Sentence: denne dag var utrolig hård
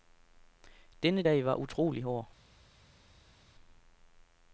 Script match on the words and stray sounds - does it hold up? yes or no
yes